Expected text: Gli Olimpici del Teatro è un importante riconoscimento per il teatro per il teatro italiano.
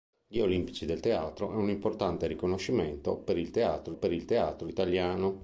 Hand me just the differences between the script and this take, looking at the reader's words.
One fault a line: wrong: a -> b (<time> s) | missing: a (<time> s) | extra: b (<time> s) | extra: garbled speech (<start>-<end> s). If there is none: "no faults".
no faults